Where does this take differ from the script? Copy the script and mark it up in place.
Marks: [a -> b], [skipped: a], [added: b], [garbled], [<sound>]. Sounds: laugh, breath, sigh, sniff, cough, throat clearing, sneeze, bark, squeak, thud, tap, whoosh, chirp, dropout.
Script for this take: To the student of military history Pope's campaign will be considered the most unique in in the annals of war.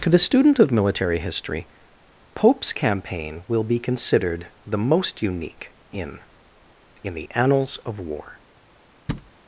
To the student of military history Pope's campaign will be considered the most unique in in the annals of war. [thud]